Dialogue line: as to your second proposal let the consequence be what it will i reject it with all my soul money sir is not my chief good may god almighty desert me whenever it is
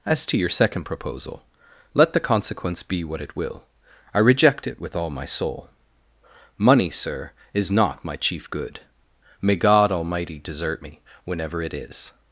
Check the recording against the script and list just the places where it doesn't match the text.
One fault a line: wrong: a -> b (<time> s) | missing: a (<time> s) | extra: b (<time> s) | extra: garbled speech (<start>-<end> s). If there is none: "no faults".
no faults